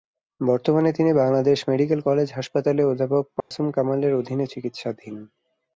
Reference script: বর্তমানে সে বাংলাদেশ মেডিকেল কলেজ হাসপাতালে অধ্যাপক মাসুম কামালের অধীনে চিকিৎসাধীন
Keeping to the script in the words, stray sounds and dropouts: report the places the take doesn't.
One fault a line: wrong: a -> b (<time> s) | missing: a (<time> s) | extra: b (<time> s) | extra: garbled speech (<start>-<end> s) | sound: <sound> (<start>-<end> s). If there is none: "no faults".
wrong: সে -> তিনি (1.0 s)
sound: dropout (3.4-3.5 s)